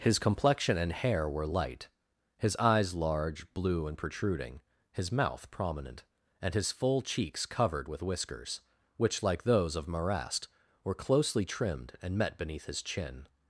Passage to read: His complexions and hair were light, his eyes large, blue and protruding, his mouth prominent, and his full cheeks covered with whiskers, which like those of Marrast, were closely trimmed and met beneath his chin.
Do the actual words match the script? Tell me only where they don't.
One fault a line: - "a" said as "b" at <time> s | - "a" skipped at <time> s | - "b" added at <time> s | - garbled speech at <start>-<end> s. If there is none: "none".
- "complexions" said as "complexion" at 0.2 s